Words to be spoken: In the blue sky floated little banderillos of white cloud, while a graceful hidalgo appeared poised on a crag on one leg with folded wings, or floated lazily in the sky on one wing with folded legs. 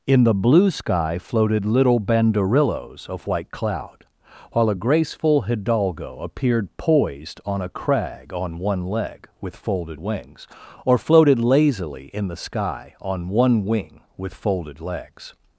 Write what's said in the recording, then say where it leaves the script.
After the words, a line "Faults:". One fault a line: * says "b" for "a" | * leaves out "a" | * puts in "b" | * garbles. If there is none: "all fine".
In the blue sky floated little banderillos of white cloud, while a graceful hidalgo appeared poised on a crag on one leg with folded wings, or floated lazily in the sky on one wing with folded legs.
Faults:
all fine